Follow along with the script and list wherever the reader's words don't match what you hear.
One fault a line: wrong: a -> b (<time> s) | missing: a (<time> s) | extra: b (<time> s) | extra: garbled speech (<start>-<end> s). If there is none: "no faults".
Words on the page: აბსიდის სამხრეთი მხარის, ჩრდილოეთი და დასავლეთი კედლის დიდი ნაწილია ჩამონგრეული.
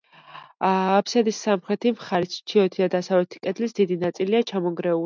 no faults